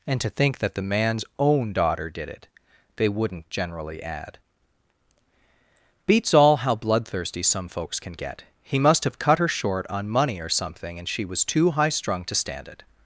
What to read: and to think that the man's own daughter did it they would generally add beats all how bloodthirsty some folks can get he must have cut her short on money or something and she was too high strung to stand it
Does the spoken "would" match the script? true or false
false